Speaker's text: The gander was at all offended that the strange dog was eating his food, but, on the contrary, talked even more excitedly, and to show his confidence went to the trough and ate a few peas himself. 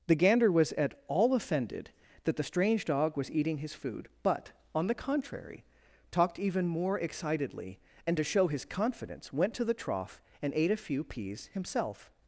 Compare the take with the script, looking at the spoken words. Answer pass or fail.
pass